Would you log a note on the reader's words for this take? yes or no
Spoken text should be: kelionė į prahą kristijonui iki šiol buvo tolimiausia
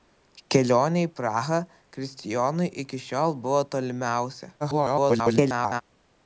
yes